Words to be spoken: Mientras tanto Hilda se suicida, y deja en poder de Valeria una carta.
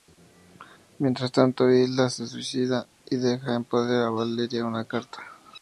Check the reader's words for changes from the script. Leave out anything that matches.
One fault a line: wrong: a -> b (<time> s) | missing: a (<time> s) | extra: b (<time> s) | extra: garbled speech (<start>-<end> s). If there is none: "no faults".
no faults